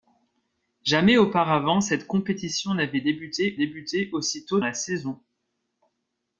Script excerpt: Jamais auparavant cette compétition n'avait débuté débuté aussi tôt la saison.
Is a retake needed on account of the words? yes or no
no